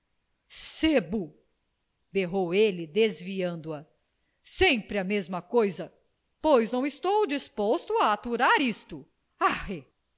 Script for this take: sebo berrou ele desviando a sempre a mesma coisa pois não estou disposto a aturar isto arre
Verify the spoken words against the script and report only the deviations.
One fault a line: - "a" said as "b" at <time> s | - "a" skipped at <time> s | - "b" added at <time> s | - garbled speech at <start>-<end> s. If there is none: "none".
none